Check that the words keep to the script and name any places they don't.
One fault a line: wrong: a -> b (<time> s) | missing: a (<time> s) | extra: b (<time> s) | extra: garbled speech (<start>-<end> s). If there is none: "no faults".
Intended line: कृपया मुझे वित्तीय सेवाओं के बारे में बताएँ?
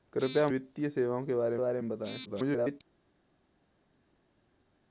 missing: मुझे (0.5 s)
extra: बारे (1.6 s)
extra: garbled speech (2.3-2.8 s)